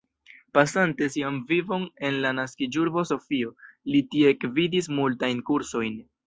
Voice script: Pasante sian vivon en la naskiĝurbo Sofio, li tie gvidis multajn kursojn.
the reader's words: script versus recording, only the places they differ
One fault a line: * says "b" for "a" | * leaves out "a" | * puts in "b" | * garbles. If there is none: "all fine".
all fine